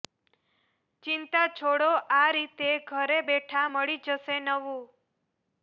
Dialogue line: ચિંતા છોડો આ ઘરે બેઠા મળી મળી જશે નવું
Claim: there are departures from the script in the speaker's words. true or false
true